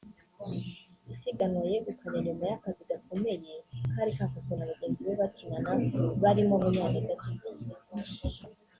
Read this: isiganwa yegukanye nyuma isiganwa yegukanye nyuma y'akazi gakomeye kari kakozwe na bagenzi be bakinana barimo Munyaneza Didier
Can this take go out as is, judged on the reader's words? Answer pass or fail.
fail